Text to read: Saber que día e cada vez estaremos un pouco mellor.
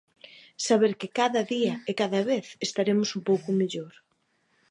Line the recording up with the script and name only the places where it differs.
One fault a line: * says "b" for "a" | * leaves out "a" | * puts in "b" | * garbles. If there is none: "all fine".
* puts in "cada"